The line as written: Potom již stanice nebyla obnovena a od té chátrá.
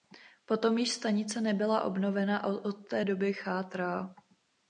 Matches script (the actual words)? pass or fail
fail